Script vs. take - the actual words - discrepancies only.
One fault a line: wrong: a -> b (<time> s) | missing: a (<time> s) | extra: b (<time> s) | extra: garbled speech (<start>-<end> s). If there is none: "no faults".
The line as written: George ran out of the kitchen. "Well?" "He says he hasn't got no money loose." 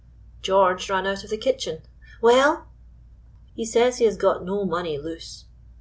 wrong: hasn't -> has (4.1 s)